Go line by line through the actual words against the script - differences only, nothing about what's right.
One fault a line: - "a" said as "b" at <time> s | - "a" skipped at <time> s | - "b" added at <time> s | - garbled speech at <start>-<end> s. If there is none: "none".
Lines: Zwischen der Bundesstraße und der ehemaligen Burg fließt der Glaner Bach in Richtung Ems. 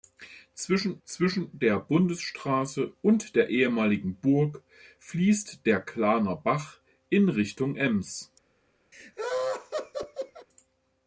- "zwischen" added at 1.1 s